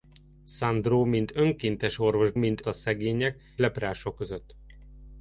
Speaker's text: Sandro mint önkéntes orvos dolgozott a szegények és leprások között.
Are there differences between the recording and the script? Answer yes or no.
yes